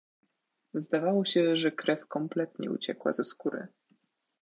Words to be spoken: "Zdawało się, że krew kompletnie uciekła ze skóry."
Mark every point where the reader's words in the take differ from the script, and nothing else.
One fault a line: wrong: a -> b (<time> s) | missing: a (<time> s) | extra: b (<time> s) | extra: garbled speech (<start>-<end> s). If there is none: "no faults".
no faults